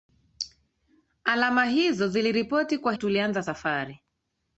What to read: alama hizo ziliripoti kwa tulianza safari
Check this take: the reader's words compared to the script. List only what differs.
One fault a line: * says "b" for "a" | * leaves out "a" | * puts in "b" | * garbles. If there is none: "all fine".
all fine